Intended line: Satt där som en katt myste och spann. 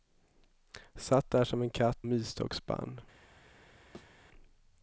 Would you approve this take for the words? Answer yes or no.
yes